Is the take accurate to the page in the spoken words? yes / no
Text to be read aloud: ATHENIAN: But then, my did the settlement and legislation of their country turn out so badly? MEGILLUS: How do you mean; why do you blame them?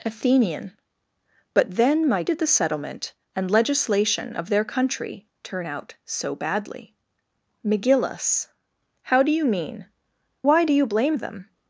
yes